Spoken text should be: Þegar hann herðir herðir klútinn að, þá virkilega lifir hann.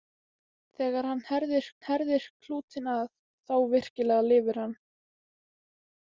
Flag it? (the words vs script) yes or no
no